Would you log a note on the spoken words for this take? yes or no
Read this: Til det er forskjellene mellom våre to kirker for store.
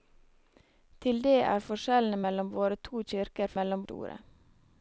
yes